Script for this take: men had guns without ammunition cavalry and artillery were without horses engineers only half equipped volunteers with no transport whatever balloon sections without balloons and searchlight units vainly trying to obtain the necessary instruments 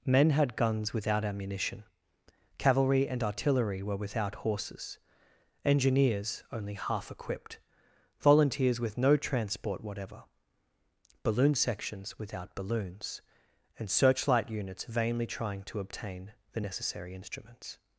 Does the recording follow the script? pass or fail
pass